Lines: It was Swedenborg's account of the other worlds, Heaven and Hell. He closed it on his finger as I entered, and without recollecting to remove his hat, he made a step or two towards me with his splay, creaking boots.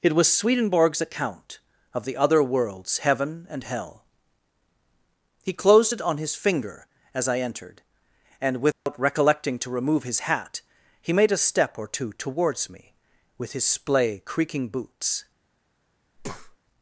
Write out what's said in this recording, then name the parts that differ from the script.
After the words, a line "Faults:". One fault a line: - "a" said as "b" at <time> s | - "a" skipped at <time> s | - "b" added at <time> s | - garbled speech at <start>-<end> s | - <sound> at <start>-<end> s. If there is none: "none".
It was Swedenborg's account of the other worlds, Heaven and Hell. He closed it on his finger as I entered, and without recollecting to remove his hat, he made a step or two towards me with his splay, creaking boots.
Faults:
- dropout at 8.7-8.9 s
- breath at 16.2-16.6 s